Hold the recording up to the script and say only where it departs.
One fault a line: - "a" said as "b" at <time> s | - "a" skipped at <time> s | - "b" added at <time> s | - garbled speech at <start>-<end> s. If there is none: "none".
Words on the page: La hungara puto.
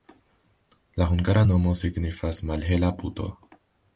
- "nomo signifas malhela" added at 1.5 s